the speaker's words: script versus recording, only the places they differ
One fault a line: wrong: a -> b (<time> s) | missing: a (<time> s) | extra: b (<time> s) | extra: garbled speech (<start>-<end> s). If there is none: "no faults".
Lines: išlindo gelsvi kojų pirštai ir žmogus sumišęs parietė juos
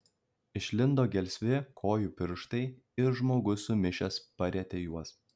no faults